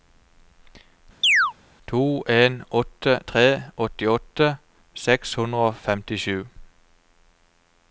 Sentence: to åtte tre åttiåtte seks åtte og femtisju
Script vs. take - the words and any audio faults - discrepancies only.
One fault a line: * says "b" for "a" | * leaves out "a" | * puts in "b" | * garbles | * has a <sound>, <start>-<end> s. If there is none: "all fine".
* has a chirp, 1.2-1.5 s
* puts in "en"
* says "hundre" for "åtte"